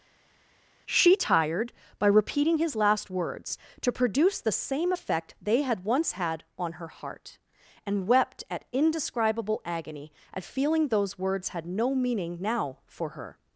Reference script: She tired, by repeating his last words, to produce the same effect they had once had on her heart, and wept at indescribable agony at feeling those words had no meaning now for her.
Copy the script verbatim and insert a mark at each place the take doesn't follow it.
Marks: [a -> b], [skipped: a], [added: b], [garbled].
She tired, by repeating his last words, to produce the same effect they had once had on her heart, and wept at indescribable agony at feeling those words had no meaning now for her.